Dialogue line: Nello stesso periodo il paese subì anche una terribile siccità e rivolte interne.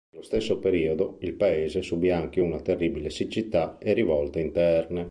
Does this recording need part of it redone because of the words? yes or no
no